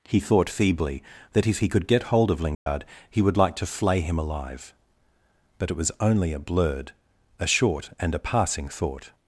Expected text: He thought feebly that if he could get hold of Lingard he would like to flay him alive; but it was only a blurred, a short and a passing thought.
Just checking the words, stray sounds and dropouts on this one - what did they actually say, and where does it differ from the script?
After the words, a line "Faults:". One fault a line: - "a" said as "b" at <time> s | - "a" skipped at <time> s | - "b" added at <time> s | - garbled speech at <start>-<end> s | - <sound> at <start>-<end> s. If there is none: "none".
He thought feebly that if he could get hold of Lingard he would like to flay him alive; but it was only a blurred, a short and a passing thought.
Faults:
- dropout at 2.5-2.7 s